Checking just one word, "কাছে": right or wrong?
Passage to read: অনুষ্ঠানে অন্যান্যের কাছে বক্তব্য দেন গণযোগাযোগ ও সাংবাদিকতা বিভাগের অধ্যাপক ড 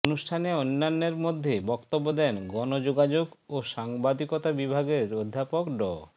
wrong